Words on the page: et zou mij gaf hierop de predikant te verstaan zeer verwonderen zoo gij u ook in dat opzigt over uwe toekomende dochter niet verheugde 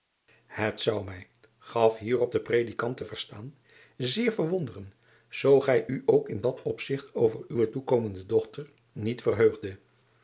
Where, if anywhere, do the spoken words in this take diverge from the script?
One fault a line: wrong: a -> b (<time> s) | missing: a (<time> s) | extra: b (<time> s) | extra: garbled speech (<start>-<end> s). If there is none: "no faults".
no faults